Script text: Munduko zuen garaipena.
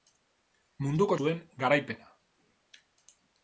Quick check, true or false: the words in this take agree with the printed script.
true